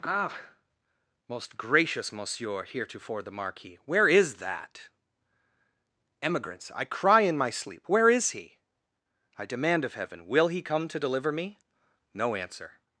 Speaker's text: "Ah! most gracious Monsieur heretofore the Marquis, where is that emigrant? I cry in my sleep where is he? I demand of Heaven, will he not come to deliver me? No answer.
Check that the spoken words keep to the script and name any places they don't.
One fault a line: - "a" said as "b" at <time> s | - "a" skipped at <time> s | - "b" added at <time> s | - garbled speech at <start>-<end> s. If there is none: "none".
- "emigrant" said as "emigrants" at 6.2 s
- "not" skipped at 10.6 s